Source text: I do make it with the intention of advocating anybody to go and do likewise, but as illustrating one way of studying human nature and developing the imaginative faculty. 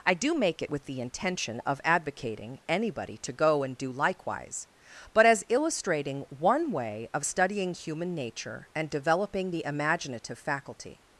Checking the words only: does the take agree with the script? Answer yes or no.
yes